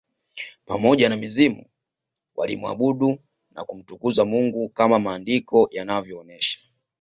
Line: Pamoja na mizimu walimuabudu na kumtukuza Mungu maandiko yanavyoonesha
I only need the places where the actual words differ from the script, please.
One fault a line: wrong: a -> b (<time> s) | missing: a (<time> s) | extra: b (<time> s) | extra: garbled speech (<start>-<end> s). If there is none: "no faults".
extra: kama (4.7 s)